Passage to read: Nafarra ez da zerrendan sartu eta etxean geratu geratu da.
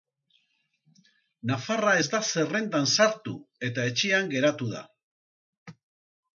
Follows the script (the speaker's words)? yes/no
no